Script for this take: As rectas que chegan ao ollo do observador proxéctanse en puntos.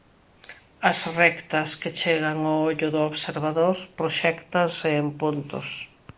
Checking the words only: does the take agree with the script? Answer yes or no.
yes